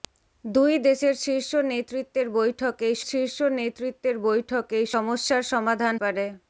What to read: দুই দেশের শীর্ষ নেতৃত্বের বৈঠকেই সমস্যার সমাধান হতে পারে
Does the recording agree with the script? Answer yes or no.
no